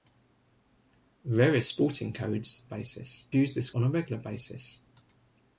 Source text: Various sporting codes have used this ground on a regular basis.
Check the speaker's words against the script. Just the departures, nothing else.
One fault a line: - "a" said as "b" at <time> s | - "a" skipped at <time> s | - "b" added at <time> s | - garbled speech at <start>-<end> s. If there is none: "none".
- "have" said as "basis" at 2.7 s
- "ground" skipped at 3.7 s